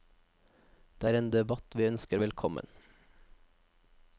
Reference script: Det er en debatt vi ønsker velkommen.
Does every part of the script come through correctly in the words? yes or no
yes